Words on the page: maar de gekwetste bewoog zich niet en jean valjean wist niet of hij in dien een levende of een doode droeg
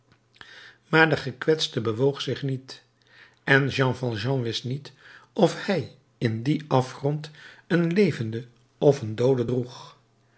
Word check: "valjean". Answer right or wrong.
right